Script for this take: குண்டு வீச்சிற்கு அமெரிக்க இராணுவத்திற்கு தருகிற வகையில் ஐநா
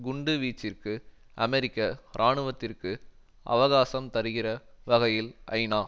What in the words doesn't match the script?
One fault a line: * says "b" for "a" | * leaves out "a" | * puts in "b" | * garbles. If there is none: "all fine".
* puts in "அவகாசம்"